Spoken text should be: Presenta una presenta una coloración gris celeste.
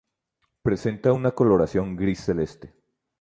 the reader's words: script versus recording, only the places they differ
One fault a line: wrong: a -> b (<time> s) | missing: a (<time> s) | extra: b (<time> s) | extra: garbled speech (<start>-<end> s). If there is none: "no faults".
missing: presenta una (1.3 s)